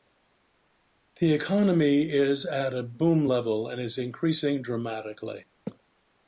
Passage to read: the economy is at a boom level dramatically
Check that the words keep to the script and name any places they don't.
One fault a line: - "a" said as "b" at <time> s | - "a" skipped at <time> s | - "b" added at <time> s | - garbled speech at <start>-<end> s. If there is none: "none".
- "and is increasing" added at 3.7 s